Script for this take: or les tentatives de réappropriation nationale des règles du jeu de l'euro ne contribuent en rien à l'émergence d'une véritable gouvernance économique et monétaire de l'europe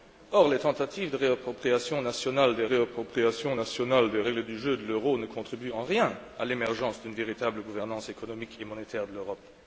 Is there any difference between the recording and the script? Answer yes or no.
yes